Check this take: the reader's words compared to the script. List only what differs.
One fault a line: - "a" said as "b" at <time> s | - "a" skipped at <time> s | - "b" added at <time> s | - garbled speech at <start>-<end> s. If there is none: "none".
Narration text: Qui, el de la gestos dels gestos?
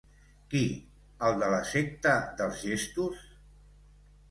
- "gestos" said as "secta" at 1.7 s